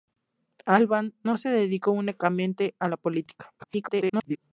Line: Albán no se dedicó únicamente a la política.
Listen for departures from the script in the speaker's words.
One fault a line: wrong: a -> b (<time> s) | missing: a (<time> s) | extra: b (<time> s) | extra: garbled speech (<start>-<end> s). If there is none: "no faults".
extra: garbled speech (3.6-4.4 s)